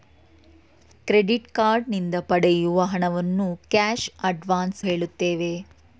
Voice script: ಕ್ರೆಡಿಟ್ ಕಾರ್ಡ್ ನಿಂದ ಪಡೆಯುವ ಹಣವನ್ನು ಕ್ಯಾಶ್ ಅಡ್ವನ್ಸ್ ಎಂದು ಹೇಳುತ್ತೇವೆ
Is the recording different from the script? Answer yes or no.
yes